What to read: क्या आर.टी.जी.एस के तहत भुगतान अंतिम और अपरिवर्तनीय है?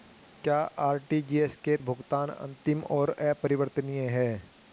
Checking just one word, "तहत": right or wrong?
wrong